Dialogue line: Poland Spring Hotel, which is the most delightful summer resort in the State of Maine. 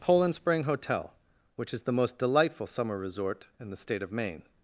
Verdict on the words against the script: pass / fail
pass